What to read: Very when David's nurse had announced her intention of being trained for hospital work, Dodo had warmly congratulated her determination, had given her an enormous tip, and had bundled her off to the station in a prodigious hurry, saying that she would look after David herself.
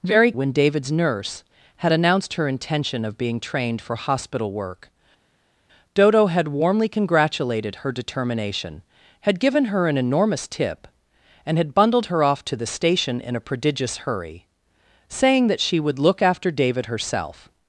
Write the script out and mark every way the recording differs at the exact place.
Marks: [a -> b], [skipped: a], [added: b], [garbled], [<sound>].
Very when David's nurse had announced her intention of being trained for hospital work, Dodo had warmly congratulated her determination, had given her an enormous tip, and had bundled her off to the station in a prodigious hurry, saying that she would look after David herself.